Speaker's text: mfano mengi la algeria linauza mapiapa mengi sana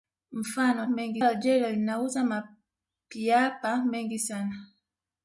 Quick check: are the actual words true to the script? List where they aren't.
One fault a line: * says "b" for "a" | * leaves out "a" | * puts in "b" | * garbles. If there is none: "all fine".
all fine